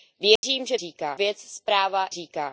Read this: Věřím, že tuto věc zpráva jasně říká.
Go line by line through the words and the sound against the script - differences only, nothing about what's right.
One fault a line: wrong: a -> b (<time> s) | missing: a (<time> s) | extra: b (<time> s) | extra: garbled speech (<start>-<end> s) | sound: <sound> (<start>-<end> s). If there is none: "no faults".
sound: dropout (0.4-0.4 s)
wrong: tuto -> říká (0.8 s)
missing: jasně (2.1 s)